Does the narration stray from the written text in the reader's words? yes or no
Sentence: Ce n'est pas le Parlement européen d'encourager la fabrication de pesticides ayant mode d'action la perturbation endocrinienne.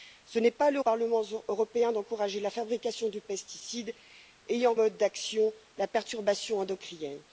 no